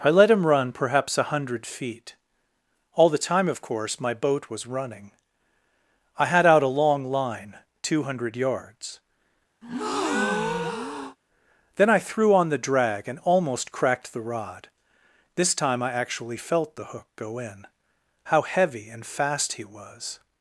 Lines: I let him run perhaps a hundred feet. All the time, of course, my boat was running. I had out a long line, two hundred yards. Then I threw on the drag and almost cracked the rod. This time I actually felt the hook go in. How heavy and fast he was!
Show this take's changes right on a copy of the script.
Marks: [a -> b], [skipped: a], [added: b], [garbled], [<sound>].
I let him run perhaps a hundred feet. All the time, of course, my boat was running. I had out a long line, two hundred yards. [breath] Then I threw on the drag and almost cracked the rod. This time I actually felt the hook go in. How heavy and fast he was!